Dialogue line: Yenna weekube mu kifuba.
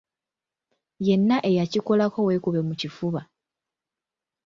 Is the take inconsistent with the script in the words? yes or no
yes